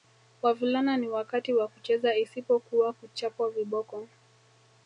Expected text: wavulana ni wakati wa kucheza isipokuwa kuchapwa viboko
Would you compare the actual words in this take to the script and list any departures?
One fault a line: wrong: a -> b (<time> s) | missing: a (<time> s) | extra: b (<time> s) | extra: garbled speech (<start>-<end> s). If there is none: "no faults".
no faults